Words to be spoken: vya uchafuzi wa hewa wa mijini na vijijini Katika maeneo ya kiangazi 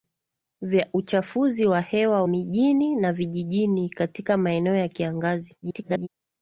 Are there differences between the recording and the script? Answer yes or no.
yes